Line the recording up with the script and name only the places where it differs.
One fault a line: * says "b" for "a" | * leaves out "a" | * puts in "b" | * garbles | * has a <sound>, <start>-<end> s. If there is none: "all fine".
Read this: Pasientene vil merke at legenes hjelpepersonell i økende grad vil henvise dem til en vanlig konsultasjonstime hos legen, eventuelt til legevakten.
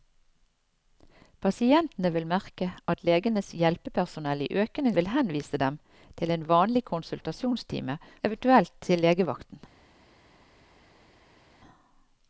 * leaves out "grad"
* leaves out "hos legen"